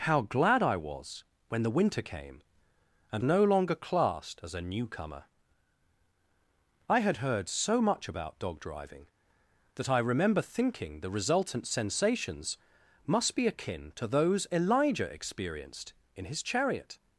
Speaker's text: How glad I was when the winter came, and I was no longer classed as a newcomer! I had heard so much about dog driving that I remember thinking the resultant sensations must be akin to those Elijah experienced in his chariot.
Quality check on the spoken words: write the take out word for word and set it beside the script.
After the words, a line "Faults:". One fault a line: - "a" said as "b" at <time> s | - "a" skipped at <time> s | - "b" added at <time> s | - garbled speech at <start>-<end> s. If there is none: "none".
How glad I was when the winter came, and no longer classed as a newcomer! I had heard so much about dog driving that I remember thinking the resultant sensations must be akin to those Elijah experienced in his chariot.
Faults:
- "I was" skipped at 3.2 s